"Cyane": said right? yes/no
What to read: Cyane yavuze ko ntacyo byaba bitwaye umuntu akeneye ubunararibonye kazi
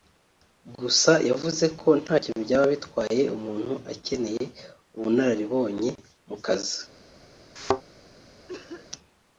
no